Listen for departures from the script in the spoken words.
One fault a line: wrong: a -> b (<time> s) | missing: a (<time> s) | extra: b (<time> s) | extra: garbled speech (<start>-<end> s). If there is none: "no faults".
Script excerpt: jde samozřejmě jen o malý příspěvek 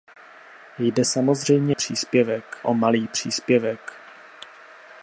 wrong: jen -> příspěvek (1.7 s)